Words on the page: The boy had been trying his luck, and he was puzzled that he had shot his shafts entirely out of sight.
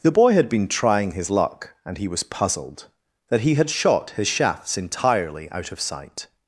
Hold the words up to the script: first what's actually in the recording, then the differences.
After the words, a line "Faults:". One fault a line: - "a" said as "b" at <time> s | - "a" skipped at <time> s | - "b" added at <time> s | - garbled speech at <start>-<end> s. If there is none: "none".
The boy had been trying his luck, and he was puzzled that he had shot his shafts entirely out of sight.
Faults:
none